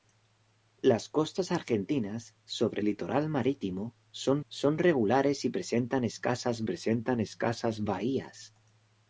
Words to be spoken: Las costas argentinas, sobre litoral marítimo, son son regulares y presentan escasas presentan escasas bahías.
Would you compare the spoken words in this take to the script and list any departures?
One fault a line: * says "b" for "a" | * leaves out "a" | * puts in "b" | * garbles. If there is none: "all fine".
all fine